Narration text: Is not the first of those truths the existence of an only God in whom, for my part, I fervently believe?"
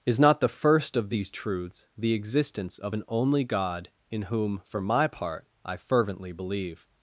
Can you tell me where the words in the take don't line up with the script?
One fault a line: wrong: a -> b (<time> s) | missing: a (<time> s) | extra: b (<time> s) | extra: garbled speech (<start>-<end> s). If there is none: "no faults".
wrong: those -> these (1.1 s)